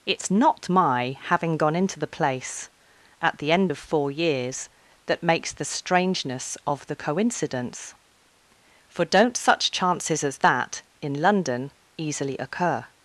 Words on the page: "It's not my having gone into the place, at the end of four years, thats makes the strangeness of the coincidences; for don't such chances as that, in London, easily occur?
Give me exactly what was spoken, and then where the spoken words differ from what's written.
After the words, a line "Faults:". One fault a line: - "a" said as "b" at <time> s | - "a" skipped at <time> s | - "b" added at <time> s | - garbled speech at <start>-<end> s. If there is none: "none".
"It's not my having gone into the place, at the end of four years, that makes the strangeness of the coincidence; for don't such chances as that, in London, easily occur?
Faults:
- "thats" said as "that" at 5.1 s
- "coincidences" said as "coincidence" at 7.0 s